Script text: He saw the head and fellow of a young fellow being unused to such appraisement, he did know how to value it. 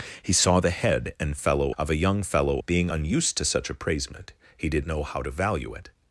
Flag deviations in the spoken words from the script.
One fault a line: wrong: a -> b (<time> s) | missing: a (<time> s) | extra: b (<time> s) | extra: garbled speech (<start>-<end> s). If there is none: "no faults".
no faults